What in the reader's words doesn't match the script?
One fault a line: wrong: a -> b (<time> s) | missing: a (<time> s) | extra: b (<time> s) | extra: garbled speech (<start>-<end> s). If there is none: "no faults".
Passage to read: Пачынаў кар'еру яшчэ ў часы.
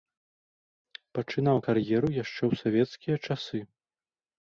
extra: савецкія (2.7 s)